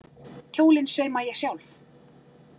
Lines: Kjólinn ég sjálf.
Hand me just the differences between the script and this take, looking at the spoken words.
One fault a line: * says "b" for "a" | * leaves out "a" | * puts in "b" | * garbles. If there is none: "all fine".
* puts in "sauma"